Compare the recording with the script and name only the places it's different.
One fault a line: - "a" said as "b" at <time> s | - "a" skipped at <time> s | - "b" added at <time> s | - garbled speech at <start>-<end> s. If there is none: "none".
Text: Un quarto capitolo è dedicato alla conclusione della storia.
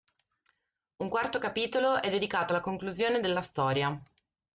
none